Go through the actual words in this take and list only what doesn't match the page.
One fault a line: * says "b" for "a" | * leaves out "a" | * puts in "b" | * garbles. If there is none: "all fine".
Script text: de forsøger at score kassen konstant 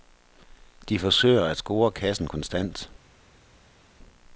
all fine